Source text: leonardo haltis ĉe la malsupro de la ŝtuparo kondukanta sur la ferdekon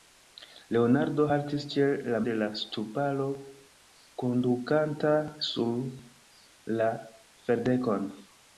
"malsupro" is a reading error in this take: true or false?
true